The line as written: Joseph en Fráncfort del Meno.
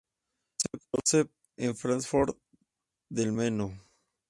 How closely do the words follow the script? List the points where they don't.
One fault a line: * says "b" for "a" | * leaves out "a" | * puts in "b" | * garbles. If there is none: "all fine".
all fine